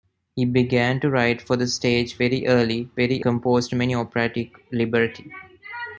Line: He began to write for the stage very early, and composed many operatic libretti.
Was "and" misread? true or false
true